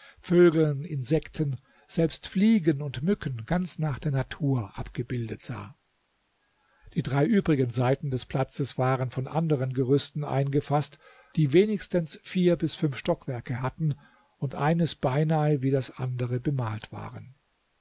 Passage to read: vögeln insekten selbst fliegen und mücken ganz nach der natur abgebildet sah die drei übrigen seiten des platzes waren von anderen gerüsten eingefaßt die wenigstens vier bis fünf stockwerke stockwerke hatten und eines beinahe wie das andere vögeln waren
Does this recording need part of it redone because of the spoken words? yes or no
yes